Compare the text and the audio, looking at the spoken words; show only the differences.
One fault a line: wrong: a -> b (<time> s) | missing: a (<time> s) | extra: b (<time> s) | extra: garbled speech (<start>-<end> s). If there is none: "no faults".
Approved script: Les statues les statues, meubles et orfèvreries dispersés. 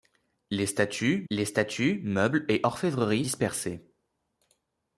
no faults